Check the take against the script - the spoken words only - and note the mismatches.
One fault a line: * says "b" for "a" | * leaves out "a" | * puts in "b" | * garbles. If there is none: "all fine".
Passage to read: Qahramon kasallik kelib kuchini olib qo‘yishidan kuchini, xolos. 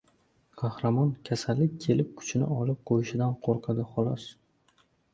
* says "qo‘rqadi" for "kuchini"